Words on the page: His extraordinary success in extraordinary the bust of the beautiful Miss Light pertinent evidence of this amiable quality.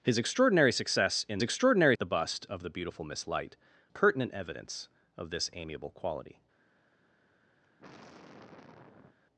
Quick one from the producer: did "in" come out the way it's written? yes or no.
yes